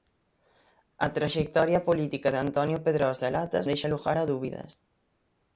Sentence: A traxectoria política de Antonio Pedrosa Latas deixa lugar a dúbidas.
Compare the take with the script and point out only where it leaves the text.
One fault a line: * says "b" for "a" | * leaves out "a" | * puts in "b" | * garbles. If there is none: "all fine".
all fine